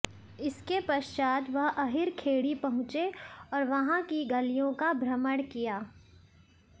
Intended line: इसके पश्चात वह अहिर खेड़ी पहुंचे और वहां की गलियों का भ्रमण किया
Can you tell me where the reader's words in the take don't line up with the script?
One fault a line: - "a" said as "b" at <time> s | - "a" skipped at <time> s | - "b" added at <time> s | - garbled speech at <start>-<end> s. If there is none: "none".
none